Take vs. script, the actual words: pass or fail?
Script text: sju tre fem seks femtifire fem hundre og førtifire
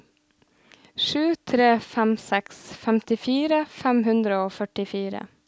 pass